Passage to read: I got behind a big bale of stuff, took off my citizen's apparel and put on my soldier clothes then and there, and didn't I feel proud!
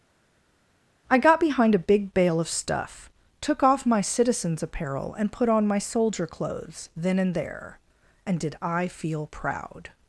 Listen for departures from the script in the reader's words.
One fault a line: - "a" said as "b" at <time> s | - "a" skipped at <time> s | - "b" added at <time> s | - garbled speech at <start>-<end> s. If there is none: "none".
- "didn't" said as "did" at 8.4 s